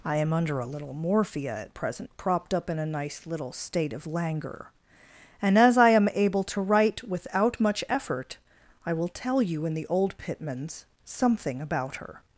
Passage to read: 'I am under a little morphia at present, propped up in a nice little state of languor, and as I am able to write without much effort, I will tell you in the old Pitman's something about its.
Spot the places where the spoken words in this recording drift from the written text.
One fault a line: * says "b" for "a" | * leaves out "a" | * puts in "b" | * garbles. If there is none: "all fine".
* says "her" for "its"